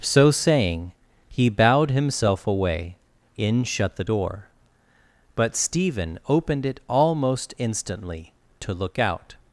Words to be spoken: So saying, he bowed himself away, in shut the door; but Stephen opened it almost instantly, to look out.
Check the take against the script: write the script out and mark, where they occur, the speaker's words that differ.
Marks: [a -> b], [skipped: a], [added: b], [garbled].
So saying, he bowed himself away, in shut the door; but Stephen opened it almost instantly, to look out.